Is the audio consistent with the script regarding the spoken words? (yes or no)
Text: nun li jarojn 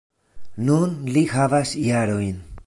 no